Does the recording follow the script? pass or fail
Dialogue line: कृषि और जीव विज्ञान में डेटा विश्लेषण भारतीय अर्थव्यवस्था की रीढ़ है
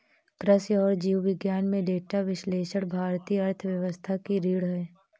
pass